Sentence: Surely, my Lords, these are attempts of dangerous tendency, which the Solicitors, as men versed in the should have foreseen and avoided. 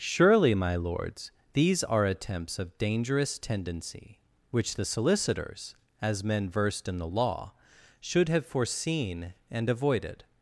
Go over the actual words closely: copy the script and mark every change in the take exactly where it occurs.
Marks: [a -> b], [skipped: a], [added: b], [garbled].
Surely, my Lords, these are attempts of dangerous tendency, which the Solicitors, as men versed in the [added: law] should have foreseen and avoided.